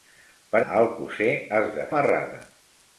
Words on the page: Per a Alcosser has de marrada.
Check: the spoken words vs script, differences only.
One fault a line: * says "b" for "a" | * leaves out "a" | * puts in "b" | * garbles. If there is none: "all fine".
all fine